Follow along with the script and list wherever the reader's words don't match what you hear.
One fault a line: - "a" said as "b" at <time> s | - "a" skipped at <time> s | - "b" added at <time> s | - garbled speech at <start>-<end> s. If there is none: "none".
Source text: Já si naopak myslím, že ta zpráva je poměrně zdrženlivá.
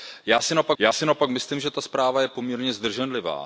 - "já si naopak" added at 0.8 s